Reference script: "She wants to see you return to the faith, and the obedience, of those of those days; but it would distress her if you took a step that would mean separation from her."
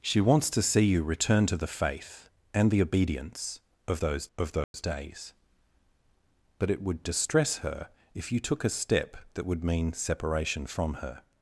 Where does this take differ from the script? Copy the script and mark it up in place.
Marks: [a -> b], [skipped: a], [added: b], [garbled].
"She wants to see you return to the faith, and the obedience, of those of those days; but it would distress her if you took a step that would mean separation from her."